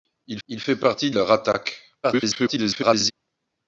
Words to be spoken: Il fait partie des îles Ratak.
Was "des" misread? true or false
true